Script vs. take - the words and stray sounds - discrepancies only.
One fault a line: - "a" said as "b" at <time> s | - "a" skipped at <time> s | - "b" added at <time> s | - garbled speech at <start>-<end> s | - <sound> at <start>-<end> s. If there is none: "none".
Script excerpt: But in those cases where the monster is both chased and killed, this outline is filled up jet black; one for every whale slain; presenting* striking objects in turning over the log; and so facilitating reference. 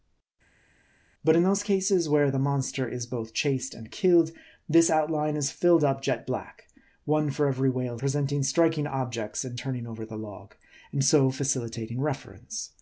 - "slain" skipped at 8.0 s